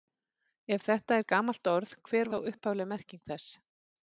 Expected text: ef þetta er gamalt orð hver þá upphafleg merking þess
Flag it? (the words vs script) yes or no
no